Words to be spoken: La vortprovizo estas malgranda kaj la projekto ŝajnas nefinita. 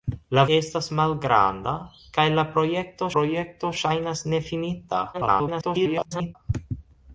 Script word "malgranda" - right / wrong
right